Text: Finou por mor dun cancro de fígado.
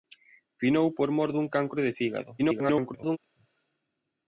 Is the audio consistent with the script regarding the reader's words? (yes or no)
no